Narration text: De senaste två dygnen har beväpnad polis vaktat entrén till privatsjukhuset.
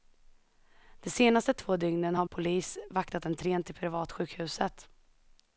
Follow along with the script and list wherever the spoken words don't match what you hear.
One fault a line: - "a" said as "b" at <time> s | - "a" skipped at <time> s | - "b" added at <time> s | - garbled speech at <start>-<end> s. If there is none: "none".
- "beväpnad" skipped at 2.3 s